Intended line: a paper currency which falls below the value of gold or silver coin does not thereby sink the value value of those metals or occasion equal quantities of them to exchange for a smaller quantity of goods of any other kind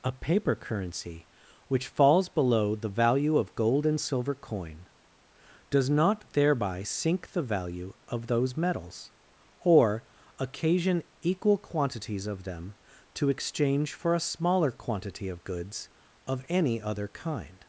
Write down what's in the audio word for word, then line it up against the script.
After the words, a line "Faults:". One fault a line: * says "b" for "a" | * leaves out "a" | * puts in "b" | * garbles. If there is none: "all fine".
a paper currency which falls below the value of gold and silver coin does not thereby sink the value of those metals or occasion equal quantities of them to exchange for a smaller quantity of goods of any other kind
Faults:
* says "and" for "or"
* leaves out "value"